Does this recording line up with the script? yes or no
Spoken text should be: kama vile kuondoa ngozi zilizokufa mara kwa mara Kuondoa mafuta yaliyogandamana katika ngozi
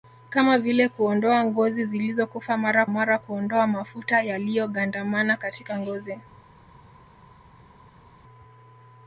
no